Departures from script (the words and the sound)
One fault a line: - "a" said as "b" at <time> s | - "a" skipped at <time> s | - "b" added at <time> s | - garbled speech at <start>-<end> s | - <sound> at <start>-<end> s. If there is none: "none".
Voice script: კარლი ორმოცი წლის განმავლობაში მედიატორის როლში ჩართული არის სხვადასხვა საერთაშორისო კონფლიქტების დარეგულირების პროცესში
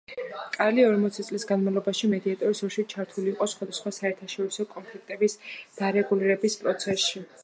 - "არის" said as "იყო" at 3.3 s